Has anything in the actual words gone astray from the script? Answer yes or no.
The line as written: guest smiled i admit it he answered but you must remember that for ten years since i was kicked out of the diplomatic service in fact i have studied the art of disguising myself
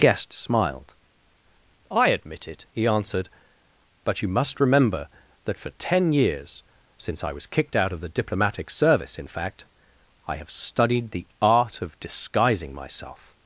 no